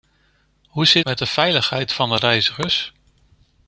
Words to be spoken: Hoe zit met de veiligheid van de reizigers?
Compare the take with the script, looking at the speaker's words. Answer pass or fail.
pass